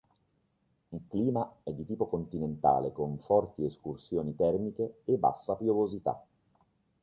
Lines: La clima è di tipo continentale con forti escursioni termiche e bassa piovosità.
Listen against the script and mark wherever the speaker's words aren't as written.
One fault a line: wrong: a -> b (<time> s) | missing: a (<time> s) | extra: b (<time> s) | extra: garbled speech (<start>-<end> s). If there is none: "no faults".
wrong: La -> Il (0.9 s)